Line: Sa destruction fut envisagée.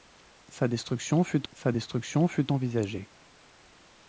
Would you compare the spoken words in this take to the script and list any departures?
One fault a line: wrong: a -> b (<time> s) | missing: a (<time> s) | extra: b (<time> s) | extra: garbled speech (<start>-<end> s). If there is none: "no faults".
extra: sa destruction fut (1.5 s)